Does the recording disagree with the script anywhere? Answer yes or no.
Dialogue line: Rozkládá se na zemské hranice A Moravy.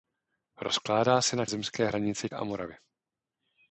no